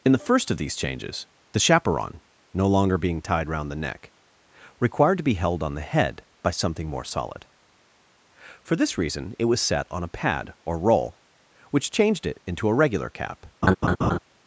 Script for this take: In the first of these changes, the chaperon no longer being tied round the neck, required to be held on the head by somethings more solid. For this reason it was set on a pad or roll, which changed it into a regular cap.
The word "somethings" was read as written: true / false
false